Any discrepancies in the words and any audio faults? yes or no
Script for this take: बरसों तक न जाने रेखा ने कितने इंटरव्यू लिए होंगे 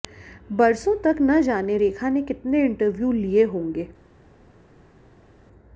no